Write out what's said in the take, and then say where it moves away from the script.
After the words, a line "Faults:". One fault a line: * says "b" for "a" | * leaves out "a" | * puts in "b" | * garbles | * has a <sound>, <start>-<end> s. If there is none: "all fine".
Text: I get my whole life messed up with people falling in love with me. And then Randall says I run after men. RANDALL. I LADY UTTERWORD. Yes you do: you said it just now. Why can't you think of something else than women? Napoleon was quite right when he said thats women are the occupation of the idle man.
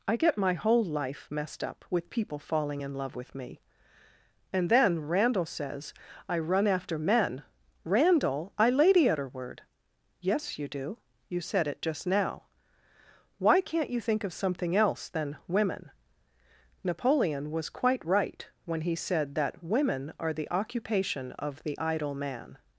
I get my whole life messed up with people falling in love with me. And then Randall says I run after men. RANDALL. I LADY UTTERWORD. Yes you do: you said it just now. Why can't you think of something else than women? Napoleon was quite right when he said that women are the occupation of the idle man.
Faults:
* says "that" for "thats"